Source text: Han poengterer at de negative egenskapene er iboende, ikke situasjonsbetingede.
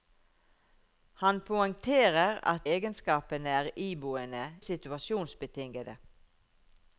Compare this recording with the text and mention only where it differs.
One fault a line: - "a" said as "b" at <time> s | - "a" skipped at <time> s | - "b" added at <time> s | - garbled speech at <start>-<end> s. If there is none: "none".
- "de negative" skipped at 2.7 s
- "ikke" skipped at 4.4 s